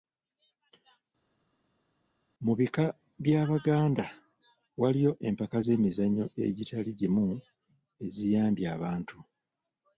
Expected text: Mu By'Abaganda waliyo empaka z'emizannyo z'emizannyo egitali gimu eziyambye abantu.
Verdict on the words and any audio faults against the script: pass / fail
fail